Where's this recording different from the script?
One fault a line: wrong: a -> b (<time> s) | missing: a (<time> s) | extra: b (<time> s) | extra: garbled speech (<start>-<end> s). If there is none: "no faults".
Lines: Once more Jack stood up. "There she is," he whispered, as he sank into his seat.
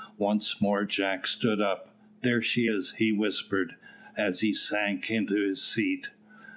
no faults